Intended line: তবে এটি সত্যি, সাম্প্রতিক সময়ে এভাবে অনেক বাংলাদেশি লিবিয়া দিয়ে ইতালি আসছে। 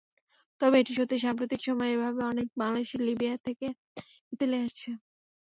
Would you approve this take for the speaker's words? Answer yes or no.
no